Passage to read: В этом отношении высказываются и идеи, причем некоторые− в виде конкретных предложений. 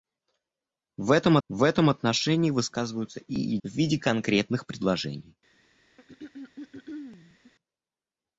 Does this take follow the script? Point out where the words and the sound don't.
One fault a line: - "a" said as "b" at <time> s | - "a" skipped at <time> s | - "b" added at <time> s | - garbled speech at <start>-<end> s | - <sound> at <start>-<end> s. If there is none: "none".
- "в этом" added at 1.5 s
- "идеи причем некоторые" skipped at 3.6 s
- throat clearing at 6.0-7.5 s